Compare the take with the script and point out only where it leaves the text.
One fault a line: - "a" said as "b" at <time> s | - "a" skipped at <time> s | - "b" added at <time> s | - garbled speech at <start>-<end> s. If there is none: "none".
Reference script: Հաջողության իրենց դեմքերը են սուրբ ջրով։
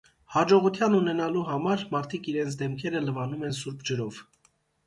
- "ունենալու համար մարդիկ" added at 1.0 s
- "լվանում" added at 3.1 s